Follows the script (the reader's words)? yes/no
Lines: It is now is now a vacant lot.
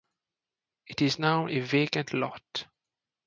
no